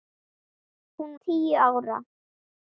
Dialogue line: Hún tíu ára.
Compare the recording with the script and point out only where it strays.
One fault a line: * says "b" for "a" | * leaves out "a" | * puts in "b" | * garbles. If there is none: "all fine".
all fine